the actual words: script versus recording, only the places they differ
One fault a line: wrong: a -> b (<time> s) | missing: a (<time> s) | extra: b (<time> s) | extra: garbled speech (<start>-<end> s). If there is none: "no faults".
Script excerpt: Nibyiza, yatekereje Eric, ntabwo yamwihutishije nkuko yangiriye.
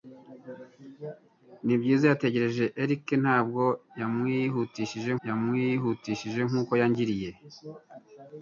extra: yamwihutishije (5.3 s)